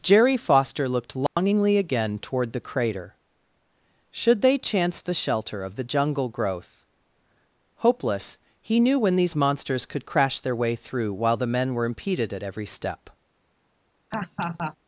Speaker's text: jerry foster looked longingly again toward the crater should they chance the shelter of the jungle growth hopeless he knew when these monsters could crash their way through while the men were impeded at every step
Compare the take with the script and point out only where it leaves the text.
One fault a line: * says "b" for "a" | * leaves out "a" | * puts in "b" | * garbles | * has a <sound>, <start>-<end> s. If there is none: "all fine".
* has a dropout, 1.3-1.4 s
* has a laugh, 14.1-14.8 s